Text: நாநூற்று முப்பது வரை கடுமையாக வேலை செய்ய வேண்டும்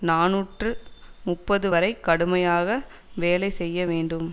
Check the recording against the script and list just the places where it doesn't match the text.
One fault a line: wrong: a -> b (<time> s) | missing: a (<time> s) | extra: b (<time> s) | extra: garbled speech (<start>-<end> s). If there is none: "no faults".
no faults